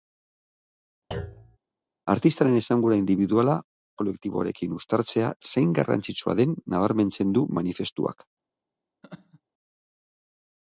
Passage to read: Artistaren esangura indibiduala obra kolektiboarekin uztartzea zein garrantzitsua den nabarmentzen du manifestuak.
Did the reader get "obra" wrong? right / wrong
wrong